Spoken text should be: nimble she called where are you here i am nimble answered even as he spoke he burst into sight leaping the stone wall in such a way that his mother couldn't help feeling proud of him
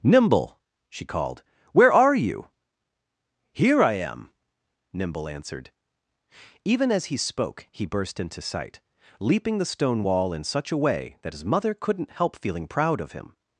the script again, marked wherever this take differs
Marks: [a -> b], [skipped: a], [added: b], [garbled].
nimble she called where are you here i am nimble answered even as he spoke he burst into sight leaping the stone wall in such a way that his mother couldn't help feeling proud of him